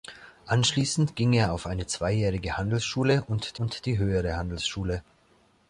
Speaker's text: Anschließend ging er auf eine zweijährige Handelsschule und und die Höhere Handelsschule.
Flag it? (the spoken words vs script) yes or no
no